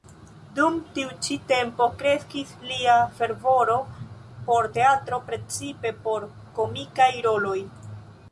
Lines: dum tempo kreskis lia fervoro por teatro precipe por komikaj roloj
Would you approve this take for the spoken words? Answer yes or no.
no